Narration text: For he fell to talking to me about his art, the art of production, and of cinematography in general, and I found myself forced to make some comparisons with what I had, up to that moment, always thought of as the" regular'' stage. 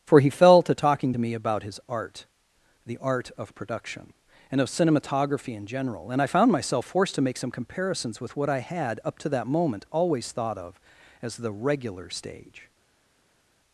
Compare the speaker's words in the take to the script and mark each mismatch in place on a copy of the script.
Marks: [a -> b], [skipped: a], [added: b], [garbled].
For he fell to talking to me about his art, the art of production, and of cinematography in general, and I found myself forced to make some comparisons with what I had, up to that moment, always thought of as the" regular'' stage.